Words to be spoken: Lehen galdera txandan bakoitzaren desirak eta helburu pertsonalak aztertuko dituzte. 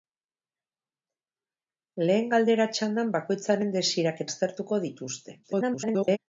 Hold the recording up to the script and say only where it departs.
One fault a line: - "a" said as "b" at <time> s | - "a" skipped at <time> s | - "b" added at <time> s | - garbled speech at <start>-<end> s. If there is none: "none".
- "eta helburu pertsonalak" skipped at 4.2 s
- garbled speech at 5.4-6.2 s